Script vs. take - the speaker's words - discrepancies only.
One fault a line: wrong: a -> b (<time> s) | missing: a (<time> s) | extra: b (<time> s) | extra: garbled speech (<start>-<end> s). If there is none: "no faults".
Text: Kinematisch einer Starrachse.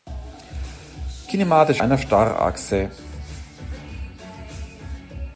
no faults